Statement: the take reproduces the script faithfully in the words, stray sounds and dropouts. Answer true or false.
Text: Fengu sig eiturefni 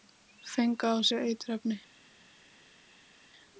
false